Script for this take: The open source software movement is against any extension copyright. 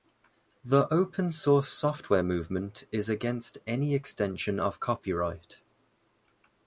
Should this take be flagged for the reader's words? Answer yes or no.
yes